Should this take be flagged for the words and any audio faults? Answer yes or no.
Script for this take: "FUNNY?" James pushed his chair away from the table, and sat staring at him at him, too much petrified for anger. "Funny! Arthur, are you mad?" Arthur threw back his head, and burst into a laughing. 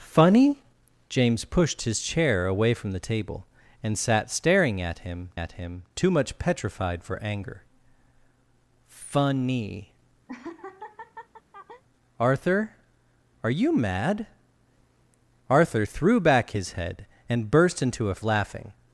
yes